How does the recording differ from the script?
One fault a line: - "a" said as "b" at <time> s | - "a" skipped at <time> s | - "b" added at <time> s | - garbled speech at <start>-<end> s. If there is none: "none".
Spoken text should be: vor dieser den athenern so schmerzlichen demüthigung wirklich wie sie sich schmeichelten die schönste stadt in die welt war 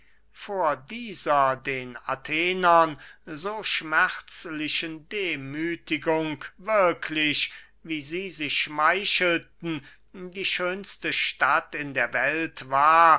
- "die" said as "der" at 11.9 s